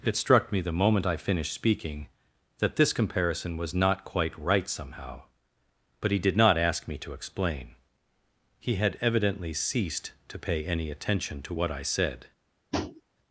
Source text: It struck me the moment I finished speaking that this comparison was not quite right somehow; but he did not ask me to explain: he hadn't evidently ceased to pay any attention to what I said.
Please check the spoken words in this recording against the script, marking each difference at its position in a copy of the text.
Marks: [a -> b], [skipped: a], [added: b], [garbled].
It struck me the moment I finished speaking that this comparison was not quite right somehow; but he did not ask me to explain: he [hadn't -> had] evidently ceased to pay any attention to what I said.